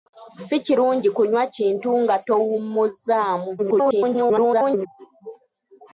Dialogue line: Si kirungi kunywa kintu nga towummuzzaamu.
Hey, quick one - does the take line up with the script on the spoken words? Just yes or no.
no